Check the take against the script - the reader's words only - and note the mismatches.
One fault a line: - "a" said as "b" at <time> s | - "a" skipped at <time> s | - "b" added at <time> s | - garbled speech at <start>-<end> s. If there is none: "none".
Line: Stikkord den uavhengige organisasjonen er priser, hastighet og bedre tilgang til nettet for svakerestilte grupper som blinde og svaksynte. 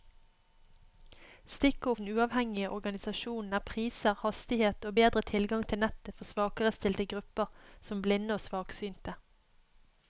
none